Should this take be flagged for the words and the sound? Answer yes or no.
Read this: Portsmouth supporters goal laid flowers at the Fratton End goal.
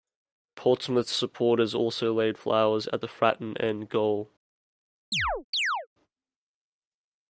yes